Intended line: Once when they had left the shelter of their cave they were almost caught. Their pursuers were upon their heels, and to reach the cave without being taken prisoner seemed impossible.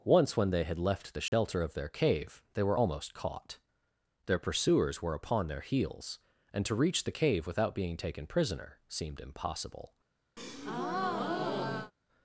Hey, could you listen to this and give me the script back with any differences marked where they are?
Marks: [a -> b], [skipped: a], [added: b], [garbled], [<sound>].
Once when they had left the shelter [dropout] of their cave they were almost caught. Their pursuers were upon their heels, and to reach the cave without being taken prisoner seemed impossible. [breath]